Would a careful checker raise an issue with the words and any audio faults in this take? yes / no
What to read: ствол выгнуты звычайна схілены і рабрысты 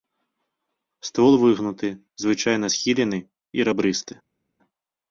no